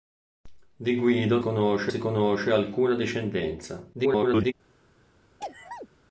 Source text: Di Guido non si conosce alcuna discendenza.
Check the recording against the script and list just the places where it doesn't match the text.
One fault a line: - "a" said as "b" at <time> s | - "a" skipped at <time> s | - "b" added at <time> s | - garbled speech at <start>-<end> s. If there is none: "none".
- "non" said as "conosce" at 1.4 s
- garbled speech at 3.9-4.5 s